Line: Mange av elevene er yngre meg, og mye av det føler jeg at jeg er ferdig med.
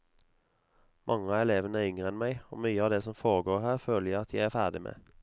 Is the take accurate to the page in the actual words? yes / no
no